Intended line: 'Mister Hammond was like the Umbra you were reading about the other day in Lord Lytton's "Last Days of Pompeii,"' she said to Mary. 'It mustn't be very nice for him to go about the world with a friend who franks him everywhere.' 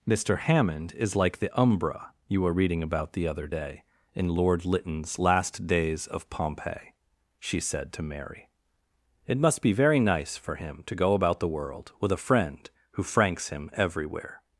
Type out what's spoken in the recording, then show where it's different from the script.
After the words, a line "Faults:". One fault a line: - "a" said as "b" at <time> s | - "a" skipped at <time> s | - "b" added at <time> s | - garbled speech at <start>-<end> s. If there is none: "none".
'Mister Hammond is like the Umbra you were reading about the other day in Lord Lytton's "Last Days of Pompeii,"' she said to Mary. 'It must be very nice for him to go about the world with a friend who franks him everywhere.'
Faults:
- "was" said as "is" at 0.9 s
- "mustn't" said as "must" at 9.4 s